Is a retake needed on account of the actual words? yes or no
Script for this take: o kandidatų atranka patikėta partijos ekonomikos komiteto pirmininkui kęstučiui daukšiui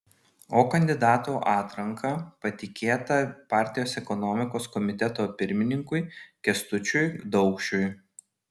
no